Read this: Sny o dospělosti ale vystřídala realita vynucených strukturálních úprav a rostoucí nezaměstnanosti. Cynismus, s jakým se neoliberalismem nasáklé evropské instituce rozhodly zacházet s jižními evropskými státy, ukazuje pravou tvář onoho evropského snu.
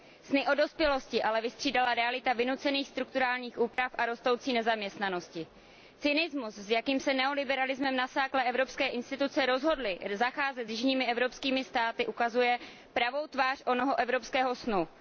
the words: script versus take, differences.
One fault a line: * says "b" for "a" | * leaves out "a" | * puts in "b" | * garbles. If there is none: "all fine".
all fine